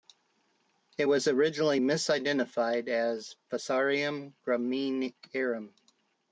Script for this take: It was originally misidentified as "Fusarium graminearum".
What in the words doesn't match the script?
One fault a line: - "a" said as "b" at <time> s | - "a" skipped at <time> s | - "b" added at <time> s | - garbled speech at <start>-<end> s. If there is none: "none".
none